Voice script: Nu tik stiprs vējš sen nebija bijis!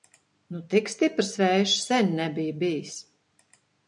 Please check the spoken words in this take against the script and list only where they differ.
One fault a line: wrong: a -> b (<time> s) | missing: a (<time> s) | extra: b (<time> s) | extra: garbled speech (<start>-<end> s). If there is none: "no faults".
no faults